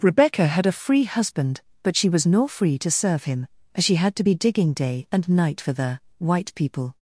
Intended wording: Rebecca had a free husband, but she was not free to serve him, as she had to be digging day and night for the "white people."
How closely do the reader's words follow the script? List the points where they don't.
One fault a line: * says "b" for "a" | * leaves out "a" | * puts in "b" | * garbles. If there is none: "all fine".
* says "nor" for "not"